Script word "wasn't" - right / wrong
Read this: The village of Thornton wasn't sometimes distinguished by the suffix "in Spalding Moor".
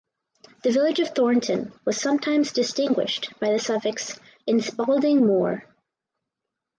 wrong